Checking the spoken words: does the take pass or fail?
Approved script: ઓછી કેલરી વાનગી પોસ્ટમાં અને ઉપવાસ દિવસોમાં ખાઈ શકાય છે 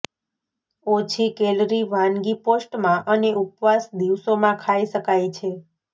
pass